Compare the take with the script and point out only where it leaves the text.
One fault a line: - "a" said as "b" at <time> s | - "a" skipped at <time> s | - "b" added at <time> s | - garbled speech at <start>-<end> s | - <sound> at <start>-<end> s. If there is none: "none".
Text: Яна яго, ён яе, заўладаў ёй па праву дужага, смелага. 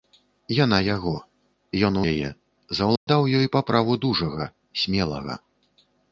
- dropout at 3.0-3.1 s